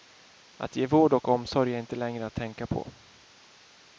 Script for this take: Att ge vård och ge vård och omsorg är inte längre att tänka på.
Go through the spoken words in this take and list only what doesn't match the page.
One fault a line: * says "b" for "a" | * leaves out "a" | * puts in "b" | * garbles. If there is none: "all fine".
* leaves out "ge vård och"